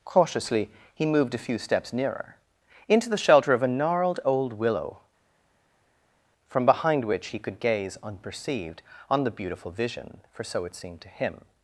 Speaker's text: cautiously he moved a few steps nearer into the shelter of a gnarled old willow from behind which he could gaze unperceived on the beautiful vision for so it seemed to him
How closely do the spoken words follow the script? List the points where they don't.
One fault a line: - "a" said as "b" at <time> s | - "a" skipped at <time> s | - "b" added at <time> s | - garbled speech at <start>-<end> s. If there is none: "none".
none